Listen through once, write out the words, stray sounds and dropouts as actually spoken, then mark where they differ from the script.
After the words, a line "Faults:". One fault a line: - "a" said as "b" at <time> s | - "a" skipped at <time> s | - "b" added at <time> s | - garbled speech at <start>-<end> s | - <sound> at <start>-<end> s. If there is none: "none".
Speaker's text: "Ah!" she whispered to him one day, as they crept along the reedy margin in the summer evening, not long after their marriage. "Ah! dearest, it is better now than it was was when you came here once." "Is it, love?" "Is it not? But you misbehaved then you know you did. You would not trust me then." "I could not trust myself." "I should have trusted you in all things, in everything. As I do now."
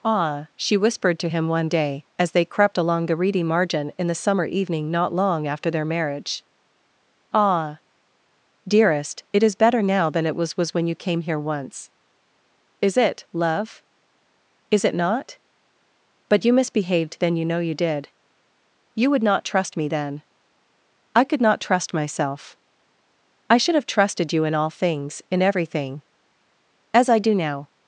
"Ah!" she whispered to him one day, as they crept along the reedy margin in the summer evening, not long after their marriage. "Ah! dearest, it is better now than it was was when you came here once." "Is it, love?" "Is it not? But you misbehaved then you know you did. You would not trust me then." "I could not trust myself." "I should have trusted you in all things, in everything. As I do now."
Faults:
none